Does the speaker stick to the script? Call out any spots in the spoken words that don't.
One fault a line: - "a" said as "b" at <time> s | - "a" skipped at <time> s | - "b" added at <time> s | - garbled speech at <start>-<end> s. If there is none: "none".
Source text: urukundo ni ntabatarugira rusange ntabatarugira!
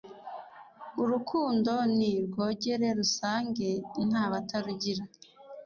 - "ntabatarugira" said as "rwogere" at 2.2 s